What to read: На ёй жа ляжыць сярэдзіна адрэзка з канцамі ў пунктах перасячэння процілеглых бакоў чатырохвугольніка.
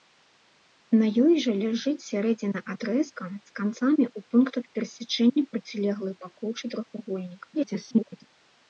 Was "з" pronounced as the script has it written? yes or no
yes